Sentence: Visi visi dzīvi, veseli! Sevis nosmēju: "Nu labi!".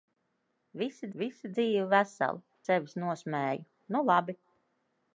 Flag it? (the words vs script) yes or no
no